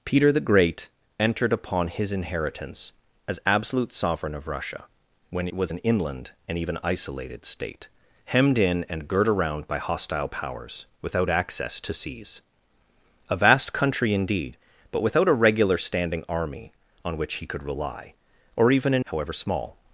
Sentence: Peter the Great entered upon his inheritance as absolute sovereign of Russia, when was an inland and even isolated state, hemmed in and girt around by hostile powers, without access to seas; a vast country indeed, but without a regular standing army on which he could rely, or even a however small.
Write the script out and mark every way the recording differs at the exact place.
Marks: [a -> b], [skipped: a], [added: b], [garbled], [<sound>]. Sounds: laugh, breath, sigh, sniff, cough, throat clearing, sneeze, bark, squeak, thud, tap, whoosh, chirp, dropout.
Peter the Great entered upon his inheritance as absolute sovereign of Russia, when was an inland and even isolated state, hemmed in and girt around by hostile powers, without access to seas; a vast country indeed, but without a regular standing army on which he could rely, or even a however small.